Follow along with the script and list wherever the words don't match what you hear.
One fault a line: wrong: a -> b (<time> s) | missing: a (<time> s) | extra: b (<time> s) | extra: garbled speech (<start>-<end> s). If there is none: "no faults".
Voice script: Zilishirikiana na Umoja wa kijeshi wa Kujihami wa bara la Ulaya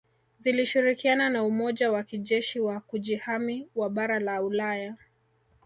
no faults